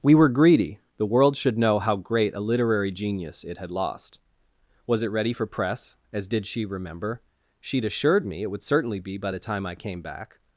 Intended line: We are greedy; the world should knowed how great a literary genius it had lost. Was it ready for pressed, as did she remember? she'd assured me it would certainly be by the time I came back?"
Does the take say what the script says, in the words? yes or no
no